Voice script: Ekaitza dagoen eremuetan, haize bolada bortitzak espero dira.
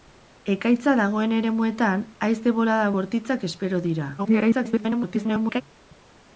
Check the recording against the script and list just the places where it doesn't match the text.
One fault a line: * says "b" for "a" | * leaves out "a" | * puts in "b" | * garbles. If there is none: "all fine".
* garbles